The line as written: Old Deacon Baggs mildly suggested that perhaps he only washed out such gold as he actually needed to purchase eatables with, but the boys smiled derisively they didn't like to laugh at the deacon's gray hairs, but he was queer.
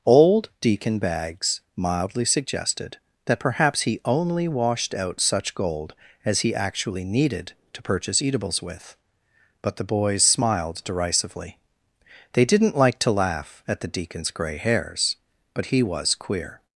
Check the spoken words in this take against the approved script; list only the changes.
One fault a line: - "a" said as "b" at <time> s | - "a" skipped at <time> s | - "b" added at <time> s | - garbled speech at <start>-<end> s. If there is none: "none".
none